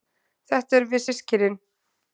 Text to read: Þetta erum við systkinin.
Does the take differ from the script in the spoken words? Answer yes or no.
no